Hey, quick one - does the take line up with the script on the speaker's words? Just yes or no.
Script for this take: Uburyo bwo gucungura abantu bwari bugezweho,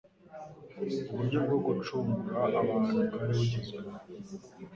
yes